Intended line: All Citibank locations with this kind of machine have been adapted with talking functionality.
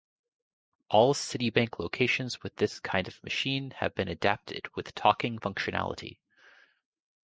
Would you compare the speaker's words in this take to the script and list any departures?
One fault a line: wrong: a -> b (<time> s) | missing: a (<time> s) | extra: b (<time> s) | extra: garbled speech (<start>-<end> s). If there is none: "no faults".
no faults